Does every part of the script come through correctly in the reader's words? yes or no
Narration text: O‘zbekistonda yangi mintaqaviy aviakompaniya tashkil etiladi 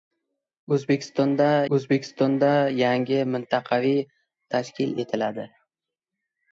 no